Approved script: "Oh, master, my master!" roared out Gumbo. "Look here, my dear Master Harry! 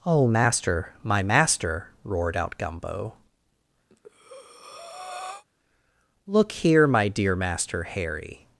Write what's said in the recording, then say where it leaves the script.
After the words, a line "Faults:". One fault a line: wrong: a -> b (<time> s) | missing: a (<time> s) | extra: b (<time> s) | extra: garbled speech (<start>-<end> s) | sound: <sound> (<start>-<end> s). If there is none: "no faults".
"Oh, master, my master!" roared out Gumbo. "Look here, my dear Master Harry!
Faults:
sound: breath (3.9-5.4 s)